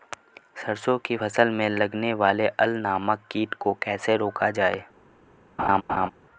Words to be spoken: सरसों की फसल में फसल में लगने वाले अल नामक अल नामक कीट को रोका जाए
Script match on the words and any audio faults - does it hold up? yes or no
no